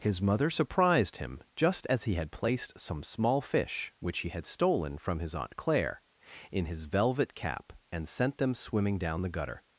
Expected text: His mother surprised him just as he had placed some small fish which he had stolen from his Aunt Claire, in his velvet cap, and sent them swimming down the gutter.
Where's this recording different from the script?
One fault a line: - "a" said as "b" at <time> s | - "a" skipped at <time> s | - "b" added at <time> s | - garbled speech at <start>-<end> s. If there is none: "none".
none